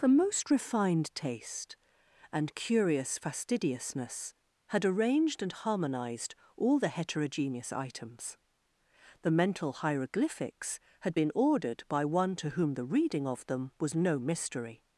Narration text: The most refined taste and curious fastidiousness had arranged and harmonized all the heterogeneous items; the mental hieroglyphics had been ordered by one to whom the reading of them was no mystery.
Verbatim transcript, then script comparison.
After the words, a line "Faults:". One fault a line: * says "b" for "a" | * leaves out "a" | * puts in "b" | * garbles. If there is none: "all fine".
The most refined taste and curious fastidiousness had arranged and harmonized all the heterogeneous items; the mental hieroglyphics had been ordered by one to whom the reading of them was no mystery.
Faults:
all fine